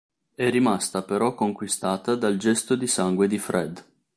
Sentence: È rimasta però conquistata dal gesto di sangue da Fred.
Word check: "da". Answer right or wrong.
wrong